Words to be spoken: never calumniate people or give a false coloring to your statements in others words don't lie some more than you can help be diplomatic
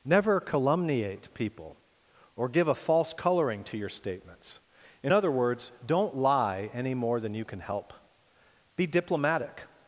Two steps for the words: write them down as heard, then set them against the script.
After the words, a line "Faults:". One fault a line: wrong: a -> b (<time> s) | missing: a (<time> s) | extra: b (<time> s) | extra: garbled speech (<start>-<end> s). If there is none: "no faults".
never calumniate people or give a false coloring to your statements in other words don't lie any more than you can help be diplomatic
Faults:
wrong: others -> other (5.1 s)
wrong: some -> any (6.7 s)